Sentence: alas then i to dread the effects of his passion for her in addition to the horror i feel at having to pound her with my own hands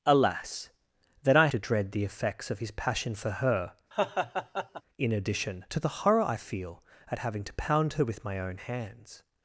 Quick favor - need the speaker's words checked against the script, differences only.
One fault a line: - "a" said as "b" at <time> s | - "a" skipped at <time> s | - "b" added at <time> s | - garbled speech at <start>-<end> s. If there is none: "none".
none